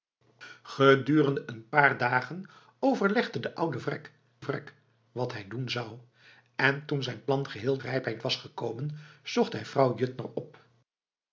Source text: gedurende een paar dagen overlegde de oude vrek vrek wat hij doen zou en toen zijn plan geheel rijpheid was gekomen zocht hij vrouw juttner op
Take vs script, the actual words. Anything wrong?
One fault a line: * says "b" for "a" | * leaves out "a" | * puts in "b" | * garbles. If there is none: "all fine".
all fine